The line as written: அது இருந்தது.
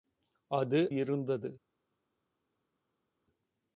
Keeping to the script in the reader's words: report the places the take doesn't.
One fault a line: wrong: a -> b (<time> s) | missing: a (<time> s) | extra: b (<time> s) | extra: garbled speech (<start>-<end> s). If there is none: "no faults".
no faults